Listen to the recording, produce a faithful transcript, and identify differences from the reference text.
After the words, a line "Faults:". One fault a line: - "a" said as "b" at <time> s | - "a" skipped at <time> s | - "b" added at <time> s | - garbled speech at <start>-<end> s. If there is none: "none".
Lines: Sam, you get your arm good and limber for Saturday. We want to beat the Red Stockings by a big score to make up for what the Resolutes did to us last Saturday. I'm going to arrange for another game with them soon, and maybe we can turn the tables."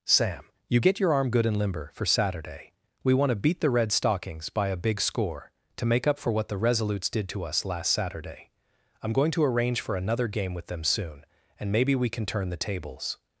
Sam, you get your arm good and limber for Saturday. We want to beat the Red Stockings by a big score to make up for what the Resolutes did to us last Saturday. I'm going to arrange for another game with them soon, and maybe we can turn the tables."
Faults:
none